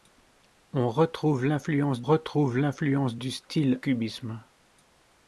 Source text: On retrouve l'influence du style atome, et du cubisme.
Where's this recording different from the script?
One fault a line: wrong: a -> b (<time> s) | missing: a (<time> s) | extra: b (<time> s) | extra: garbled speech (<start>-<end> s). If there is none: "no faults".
extra: retrouve l'influence (2.0 s)
missing: atome et du (3.8 s)